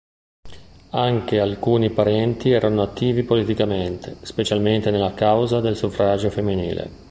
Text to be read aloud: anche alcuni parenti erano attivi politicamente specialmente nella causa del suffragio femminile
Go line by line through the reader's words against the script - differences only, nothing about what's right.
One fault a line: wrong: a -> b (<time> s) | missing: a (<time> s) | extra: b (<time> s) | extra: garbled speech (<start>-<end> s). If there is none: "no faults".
no faults